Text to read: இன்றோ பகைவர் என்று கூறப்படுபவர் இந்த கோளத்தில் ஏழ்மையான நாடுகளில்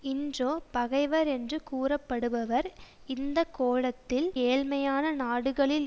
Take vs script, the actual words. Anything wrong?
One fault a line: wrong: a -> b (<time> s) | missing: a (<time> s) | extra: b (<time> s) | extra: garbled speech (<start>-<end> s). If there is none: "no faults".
no faults